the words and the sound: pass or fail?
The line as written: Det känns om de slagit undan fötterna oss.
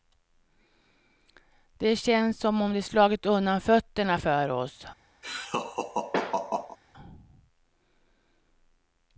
fail